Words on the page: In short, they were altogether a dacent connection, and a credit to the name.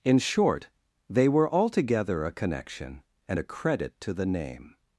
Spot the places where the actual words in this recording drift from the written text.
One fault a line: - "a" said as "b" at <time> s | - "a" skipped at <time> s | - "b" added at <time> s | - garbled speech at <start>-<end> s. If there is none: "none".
- "dacent" skipped at 2.3 s